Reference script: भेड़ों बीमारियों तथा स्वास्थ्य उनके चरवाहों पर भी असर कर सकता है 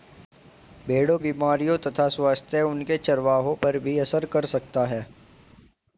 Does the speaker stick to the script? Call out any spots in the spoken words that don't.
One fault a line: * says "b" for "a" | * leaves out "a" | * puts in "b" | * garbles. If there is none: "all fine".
all fine